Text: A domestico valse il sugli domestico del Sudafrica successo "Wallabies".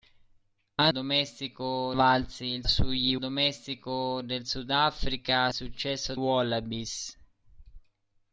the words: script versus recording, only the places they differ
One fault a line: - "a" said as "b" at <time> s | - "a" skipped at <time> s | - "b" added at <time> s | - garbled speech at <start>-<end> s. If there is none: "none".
none